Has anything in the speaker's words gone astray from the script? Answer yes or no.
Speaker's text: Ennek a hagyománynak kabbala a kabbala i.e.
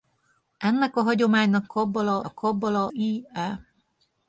no